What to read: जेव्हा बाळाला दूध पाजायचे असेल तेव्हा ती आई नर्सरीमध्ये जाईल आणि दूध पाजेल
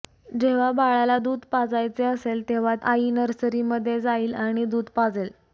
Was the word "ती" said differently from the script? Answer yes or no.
yes